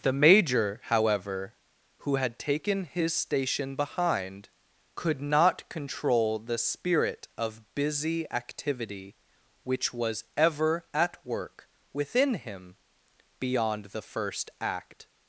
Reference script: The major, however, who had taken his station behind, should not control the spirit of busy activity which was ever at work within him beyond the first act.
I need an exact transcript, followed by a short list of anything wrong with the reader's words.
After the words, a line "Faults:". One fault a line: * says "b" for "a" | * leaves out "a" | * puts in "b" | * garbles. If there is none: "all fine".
The major, however, who had taken his station behind, could not control the spirit of busy activity which was ever at work within him beyond the first act.
Faults:
* says "could" for "should"